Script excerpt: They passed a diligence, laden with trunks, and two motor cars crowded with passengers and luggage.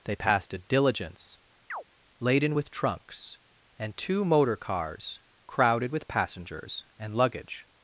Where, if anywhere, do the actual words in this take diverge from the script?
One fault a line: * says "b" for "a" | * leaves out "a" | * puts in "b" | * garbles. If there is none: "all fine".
all fine